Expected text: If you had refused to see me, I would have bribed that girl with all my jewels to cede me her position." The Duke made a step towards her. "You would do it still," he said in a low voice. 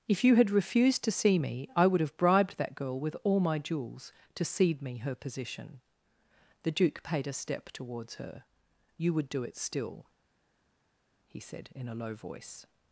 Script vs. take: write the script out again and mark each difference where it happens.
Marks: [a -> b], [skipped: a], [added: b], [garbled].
If you had refused to see me, I would have bribed that girl with all my jewels to cede me her position." The Duke [made -> paid] a step towards her. "You would do it still," he said in a low voice.